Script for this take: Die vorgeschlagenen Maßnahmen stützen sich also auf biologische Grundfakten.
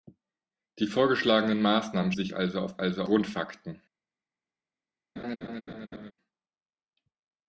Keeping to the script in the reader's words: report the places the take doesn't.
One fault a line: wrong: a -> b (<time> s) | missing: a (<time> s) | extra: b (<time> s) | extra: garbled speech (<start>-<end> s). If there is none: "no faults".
missing: stützen (2.1 s)
wrong: biologische -> also (2.8 s)